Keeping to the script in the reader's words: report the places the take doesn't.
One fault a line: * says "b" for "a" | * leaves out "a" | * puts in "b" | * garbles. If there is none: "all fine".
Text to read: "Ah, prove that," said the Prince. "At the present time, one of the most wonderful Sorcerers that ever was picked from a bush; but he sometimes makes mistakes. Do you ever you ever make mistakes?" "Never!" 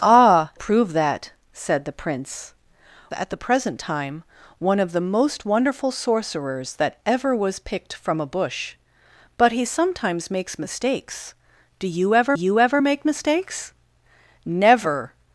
all fine